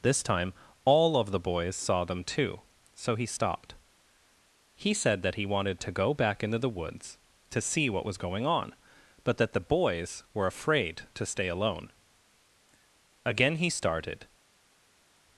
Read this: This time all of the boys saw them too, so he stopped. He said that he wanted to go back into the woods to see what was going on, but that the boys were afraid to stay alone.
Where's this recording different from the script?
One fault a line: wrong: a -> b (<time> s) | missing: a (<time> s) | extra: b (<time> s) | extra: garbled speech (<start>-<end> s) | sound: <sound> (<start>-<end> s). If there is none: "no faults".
extra: Again he started (13.2 s)